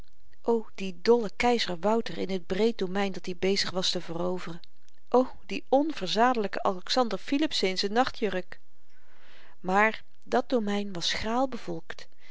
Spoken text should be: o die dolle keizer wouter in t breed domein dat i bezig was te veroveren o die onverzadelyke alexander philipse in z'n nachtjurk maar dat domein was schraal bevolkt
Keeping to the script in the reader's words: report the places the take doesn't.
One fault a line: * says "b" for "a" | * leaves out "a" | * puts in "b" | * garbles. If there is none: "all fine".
all fine